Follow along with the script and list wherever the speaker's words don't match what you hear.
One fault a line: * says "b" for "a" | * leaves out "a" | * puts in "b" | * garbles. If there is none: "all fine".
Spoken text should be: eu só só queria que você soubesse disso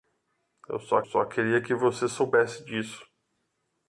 all fine